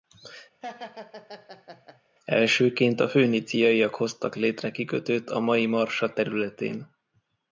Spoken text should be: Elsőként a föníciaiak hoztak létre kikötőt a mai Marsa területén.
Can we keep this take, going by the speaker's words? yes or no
yes